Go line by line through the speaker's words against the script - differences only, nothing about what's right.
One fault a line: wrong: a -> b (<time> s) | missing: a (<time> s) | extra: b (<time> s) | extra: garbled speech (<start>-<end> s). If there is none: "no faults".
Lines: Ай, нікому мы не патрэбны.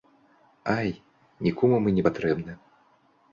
no faults